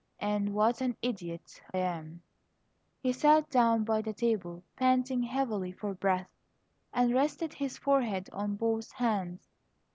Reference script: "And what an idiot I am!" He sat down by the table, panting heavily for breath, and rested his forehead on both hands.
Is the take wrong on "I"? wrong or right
wrong